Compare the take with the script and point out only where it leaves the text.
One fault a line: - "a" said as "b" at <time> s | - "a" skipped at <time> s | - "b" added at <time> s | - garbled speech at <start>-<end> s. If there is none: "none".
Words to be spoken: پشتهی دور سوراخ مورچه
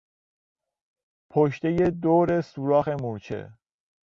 none